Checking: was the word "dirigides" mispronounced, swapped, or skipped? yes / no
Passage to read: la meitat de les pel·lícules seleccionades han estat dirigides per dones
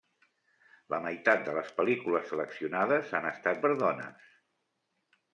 yes